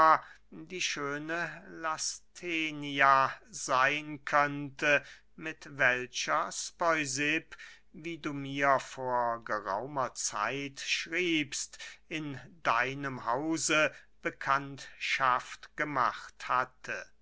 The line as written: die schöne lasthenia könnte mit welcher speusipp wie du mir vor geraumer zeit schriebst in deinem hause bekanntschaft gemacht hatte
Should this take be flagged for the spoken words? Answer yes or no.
yes